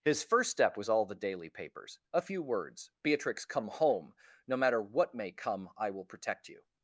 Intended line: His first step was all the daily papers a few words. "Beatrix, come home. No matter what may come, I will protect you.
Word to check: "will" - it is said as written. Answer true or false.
true